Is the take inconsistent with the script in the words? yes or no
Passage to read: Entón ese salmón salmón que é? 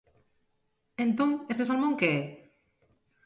yes